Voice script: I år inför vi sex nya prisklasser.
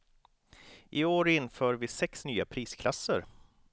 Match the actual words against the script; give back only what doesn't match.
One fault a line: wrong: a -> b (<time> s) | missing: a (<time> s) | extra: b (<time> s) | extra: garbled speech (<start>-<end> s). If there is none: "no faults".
no faults